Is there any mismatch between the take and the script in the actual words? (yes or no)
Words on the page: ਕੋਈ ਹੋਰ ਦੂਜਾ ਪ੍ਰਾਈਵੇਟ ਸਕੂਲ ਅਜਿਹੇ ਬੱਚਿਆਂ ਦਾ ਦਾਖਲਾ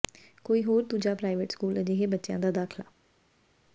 no